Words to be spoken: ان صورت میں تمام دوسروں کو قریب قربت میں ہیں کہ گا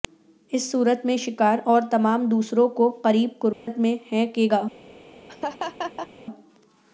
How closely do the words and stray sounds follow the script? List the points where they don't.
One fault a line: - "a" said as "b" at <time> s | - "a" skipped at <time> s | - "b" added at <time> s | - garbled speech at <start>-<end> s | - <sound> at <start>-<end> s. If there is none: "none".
- "ان" said as "اس" at 0.5 s
- "شکار اور" added at 1.2 s
- dropout at 3.5-3.7 s
- laugh at 5.3-6.1 s